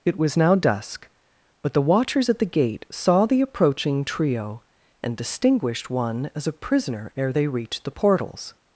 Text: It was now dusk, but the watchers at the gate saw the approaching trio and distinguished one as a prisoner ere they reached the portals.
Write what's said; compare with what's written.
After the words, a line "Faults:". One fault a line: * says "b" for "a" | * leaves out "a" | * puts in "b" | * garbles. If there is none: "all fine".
It was now dusk, but the watchers at the gate saw the approaching trio and distinguished one as a prisoner ere they reached the portals.
Faults:
all fine